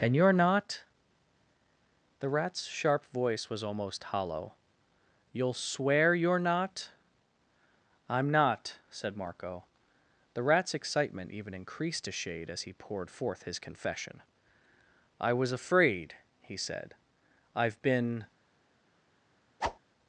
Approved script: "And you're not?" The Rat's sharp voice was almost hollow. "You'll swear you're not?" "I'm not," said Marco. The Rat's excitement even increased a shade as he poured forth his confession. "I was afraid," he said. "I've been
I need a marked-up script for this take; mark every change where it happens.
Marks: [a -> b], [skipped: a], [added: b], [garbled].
"And you're not?" The Rat's sharp voice was almost hollow. "You'll swear you're not?" "I'm not," said Marco. The Rat's excitement even increased a shade as he poured forth his confession. "I was afraid," he said. "I've been